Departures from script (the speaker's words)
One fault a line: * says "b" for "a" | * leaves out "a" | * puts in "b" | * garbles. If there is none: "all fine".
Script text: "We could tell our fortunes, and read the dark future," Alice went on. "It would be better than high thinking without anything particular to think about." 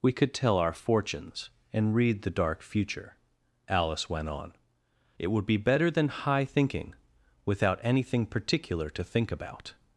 all fine